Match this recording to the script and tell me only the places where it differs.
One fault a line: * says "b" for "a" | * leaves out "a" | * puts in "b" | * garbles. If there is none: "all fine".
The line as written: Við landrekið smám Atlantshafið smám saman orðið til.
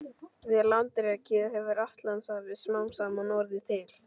* says "hefur" for "smám"